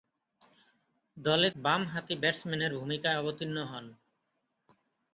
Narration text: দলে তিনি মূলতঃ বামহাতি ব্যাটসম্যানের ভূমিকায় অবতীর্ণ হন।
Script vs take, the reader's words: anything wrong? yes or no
yes